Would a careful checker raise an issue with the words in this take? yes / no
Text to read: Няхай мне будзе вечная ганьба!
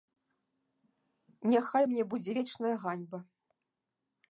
no